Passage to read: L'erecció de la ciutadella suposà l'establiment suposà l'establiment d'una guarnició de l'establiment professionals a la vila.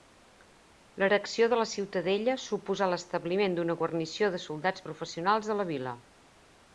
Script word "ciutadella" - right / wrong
right